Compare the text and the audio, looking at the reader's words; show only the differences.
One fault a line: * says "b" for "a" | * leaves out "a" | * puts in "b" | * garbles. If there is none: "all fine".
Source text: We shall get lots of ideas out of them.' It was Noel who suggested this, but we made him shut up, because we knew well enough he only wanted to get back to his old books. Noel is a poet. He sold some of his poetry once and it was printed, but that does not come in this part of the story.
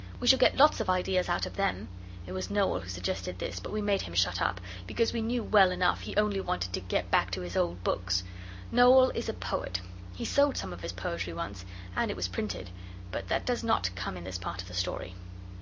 all fine